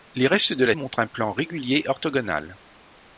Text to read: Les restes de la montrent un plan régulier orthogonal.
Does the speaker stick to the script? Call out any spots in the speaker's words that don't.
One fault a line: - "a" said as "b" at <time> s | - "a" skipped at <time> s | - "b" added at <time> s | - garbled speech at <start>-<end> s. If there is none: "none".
none